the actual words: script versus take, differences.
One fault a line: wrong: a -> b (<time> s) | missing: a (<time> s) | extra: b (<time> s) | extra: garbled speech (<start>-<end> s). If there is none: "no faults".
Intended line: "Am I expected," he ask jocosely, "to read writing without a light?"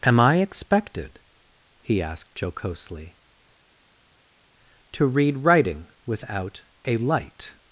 wrong: ask -> asked (2.0 s)